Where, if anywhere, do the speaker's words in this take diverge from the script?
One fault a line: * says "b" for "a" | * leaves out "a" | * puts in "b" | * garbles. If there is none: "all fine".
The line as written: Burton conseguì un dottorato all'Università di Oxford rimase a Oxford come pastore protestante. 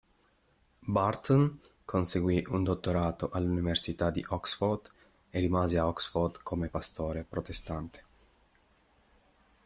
* puts in "e"